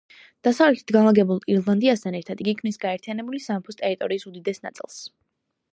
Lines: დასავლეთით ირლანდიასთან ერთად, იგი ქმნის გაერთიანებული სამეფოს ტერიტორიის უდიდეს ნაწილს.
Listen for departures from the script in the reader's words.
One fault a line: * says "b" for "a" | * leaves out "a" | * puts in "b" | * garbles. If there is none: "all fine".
* puts in "განლაგებულ"